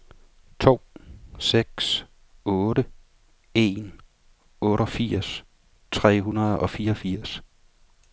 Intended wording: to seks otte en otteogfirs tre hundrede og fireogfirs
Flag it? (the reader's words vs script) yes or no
no